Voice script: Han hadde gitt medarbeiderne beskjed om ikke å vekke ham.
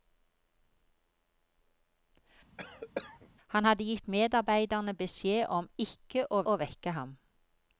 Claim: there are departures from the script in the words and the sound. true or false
true